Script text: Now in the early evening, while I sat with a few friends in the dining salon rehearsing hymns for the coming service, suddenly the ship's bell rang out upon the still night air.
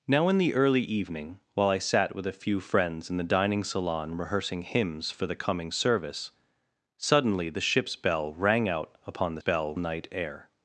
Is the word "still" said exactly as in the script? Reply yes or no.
no